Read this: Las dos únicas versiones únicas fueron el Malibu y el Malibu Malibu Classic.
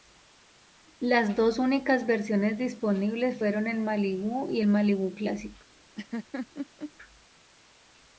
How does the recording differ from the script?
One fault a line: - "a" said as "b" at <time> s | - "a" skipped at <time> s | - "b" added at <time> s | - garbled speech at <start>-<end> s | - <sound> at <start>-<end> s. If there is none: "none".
- "únicas" said as "disponibles" at 2.6 s
- "Malibu" skipped at 5.1 s
- laugh at 6.0-6.9 s